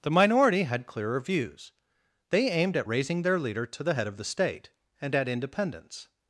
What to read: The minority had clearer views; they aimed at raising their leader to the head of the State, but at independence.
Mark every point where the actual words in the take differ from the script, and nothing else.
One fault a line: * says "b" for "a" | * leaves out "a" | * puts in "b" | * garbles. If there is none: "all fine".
* says "and" for "but"